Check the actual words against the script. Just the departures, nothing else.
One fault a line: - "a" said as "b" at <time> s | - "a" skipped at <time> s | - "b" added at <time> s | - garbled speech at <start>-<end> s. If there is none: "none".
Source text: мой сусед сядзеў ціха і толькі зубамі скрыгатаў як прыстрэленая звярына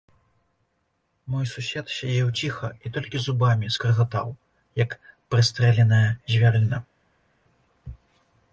none